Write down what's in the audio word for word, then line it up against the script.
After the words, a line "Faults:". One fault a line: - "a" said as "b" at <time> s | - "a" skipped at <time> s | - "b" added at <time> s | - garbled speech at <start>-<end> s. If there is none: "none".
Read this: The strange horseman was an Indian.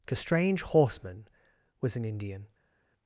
The strange horseman was an Indian.
Faults:
none